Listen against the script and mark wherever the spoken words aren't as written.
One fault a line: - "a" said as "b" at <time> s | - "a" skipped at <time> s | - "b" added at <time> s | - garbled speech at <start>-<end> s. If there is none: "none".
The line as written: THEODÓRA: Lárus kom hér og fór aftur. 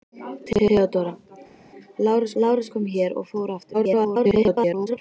- "Lárus" added at 2.4 s
- garbled speech at 3.7-5.0 s